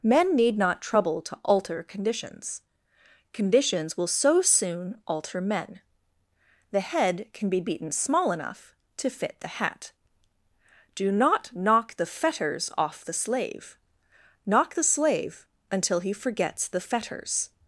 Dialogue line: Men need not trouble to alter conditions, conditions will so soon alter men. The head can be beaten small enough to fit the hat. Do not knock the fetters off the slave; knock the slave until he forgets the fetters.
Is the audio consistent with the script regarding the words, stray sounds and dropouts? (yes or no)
yes